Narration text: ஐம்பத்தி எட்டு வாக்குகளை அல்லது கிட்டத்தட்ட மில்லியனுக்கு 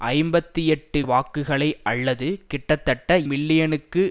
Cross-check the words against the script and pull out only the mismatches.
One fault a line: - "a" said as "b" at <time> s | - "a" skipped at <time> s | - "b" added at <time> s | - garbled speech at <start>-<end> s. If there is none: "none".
none